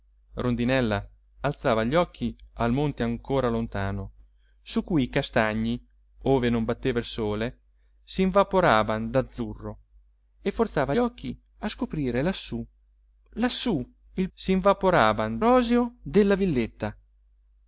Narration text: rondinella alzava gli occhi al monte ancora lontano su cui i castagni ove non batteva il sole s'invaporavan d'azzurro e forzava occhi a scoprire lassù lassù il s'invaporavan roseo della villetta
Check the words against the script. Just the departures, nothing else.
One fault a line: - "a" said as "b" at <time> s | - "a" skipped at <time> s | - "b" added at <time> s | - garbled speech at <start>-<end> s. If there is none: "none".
none